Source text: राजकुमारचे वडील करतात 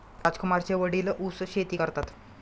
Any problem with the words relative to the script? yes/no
yes